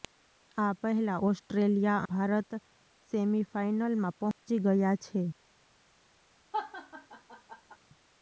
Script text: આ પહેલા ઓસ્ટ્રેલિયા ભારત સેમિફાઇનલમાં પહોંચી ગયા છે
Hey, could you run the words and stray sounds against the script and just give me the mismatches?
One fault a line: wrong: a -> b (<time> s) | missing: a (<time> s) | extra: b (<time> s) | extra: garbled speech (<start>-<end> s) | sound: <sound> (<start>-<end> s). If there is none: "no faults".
sound: dropout (4.3-4.4 s)
sound: laugh (6.5-7.8 s)